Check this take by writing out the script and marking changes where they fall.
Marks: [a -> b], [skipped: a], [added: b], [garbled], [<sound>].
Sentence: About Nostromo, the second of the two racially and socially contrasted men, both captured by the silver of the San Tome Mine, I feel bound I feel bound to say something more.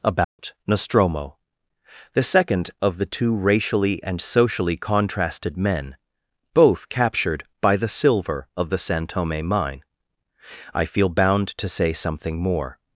About [dropout] Nostromo, the second of the two racially and socially contrasted men, both captured by the silver of the San Tome Mine, I feel bound [skipped: I feel bound] to say something more.